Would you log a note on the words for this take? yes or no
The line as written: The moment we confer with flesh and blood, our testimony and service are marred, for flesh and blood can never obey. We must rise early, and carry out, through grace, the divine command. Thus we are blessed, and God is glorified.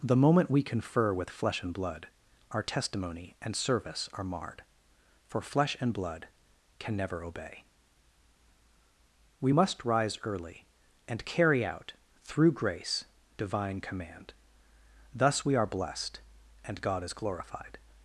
yes